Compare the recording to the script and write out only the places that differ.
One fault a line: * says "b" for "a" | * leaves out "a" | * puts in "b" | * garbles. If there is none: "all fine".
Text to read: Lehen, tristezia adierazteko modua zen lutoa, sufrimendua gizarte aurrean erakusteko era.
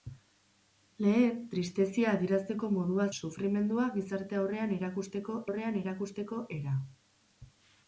* says "sufrimendua gizarte aurrean erakusteko" for "zen lutoa sufrimendua gizarte"